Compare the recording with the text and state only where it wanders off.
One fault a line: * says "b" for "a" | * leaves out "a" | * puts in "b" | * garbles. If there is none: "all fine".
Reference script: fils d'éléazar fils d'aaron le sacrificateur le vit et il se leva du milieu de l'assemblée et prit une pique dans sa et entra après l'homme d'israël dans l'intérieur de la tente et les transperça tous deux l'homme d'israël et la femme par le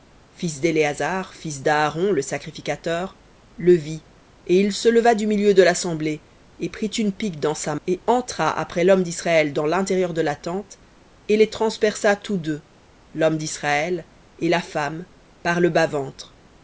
all fine